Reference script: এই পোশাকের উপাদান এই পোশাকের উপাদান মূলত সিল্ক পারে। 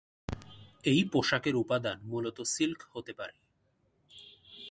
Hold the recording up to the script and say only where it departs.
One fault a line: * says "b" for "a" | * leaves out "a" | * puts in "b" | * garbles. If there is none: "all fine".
* leaves out "এই পোশাকের উপাদান"
* puts in "হতে"